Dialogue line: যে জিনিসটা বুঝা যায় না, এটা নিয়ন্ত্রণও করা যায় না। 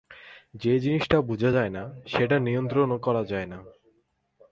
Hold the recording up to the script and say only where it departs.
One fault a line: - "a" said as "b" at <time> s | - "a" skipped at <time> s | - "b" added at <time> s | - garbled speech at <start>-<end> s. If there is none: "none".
- "এটা" said as "সেটা" at 2.1 s